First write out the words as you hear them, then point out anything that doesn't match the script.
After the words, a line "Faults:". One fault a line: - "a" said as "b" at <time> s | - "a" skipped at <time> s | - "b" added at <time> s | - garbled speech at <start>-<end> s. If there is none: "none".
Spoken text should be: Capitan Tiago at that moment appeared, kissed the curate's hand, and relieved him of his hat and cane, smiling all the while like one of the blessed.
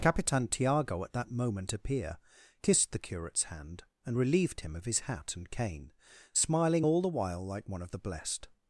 Capitan Tiago at that moment appear, kissed the curate's hand, and relieved him of his hat and cane, smiling all the while like one of the blessed.
Faults:
- "appeared" said as "appear" at 1.7 s